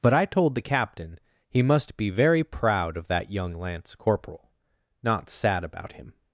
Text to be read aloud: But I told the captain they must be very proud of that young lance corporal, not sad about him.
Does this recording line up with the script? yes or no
no